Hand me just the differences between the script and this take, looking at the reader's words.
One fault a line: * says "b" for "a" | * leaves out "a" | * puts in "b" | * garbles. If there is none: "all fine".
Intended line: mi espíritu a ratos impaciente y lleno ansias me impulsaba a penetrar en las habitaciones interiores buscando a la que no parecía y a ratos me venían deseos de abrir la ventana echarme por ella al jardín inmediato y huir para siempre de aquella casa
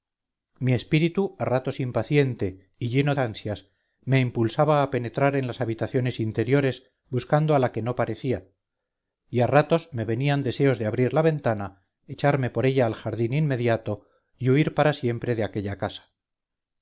all fine